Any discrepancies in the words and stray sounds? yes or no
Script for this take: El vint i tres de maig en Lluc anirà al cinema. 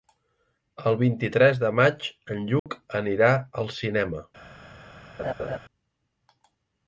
yes